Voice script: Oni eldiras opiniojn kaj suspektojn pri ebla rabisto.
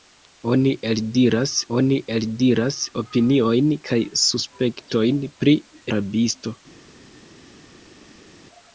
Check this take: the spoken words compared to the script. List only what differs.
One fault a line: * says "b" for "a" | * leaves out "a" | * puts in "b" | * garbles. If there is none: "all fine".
* puts in "oni eldiras"
* leaves out "ebla"